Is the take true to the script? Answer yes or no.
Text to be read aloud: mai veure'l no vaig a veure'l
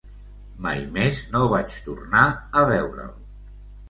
no